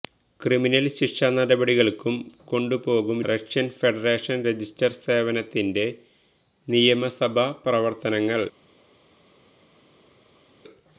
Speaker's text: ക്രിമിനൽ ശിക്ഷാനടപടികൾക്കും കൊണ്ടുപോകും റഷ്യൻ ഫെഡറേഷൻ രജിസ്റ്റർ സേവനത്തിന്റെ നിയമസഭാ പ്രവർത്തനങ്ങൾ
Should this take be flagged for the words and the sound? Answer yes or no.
no